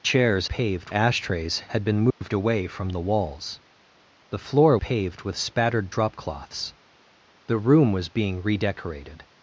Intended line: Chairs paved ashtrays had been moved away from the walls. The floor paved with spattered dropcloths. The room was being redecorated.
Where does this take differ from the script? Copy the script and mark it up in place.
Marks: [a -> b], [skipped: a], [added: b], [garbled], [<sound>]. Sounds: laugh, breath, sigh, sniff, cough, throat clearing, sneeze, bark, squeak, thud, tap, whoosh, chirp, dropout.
Chairs paved ashtrays had been moved [dropout] away from the walls. The floor paved with spattered dropcloths. The room was being redecorated.